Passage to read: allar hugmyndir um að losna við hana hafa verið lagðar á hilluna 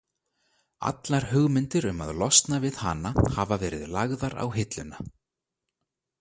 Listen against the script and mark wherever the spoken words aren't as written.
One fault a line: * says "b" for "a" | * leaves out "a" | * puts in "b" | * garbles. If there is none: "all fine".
all fine